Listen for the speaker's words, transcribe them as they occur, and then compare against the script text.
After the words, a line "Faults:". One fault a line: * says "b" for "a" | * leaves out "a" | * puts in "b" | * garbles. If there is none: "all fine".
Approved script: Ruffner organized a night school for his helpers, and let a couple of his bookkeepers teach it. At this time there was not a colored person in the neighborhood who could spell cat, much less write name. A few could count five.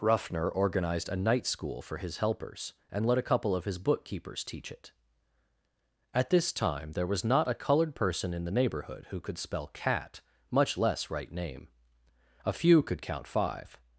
Ruffner organized a night school for his helpers, and let a couple of his bookkeepers teach it. At this time there was not a colored person in the neighborhood who could spell cat, much less write name. A few could count five.
Faults:
all fine